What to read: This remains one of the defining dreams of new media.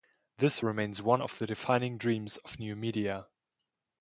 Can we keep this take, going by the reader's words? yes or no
yes